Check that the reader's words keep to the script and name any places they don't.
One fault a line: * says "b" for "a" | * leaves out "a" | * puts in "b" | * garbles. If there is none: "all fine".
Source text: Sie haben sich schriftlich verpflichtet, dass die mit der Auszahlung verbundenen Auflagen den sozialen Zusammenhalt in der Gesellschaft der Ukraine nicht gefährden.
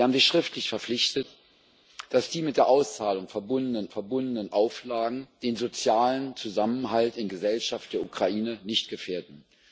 * puts in "verbundenen"
* leaves out "der"